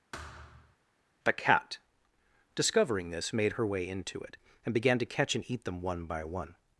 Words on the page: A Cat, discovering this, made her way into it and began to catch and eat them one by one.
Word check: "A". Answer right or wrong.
wrong